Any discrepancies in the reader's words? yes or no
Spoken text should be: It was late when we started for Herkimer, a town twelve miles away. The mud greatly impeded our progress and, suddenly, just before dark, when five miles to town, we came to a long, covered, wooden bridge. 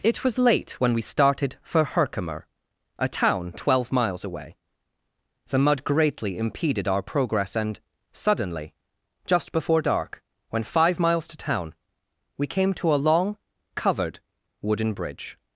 no